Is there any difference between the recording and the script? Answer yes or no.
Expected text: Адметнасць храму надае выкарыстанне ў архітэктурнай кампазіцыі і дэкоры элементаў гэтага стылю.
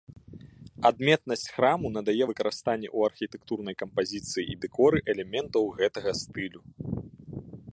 no